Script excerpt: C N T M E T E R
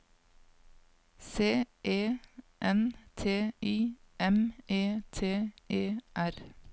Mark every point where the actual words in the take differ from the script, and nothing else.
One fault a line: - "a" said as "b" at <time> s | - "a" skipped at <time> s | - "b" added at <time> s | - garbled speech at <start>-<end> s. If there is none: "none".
- "E" added at 1.8 s
- "I" added at 3.6 s